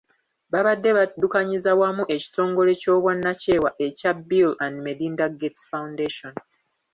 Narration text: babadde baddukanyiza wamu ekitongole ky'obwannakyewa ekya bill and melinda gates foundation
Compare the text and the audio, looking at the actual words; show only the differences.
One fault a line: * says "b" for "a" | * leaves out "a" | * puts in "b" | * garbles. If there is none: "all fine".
all fine